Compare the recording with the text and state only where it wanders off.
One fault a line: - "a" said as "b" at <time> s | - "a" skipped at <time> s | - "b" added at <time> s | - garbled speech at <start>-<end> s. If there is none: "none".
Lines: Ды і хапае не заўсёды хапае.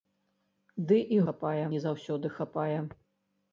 none